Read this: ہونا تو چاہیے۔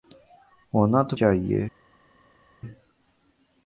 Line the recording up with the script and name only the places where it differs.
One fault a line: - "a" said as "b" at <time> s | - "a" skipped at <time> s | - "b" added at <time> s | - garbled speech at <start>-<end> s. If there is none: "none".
none